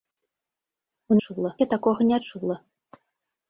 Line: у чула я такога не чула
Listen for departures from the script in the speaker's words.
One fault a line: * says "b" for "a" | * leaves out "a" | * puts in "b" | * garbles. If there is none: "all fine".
all fine